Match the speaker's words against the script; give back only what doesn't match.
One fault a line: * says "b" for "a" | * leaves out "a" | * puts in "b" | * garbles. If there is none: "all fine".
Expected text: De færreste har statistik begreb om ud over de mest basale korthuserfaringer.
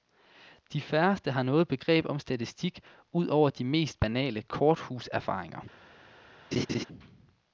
* says "noget" for "statistik"
* puts in "statistik"